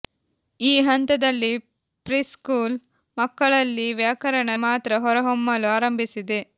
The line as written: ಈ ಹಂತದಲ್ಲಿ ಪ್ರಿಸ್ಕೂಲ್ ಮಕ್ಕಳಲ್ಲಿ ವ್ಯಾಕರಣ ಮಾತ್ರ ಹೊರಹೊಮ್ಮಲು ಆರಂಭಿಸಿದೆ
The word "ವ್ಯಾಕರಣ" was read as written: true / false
true